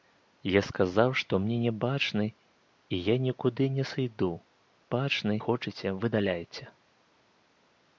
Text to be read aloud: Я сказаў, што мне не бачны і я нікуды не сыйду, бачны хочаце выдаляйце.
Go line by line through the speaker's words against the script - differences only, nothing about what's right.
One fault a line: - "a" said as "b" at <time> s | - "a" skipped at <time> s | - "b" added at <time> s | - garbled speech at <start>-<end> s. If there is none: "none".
none